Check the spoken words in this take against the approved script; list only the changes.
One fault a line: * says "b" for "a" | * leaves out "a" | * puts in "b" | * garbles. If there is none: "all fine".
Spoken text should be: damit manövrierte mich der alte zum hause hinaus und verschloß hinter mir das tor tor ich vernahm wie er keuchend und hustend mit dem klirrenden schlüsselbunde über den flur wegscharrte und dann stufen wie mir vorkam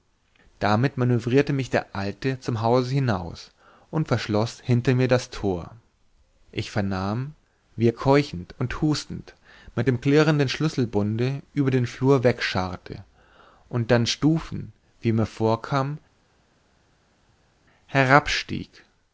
* leaves out "tor"